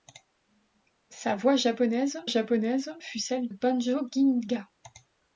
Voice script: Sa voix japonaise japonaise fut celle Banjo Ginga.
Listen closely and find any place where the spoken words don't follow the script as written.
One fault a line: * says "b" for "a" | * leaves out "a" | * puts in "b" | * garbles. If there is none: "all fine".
all fine